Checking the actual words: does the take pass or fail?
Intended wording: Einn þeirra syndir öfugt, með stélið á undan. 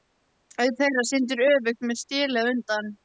pass